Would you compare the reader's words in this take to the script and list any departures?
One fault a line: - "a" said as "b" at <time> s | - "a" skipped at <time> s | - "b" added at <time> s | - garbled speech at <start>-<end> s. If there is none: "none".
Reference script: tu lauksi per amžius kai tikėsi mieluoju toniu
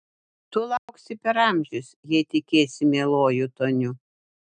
- "kai" said as "jei" at 2.1 s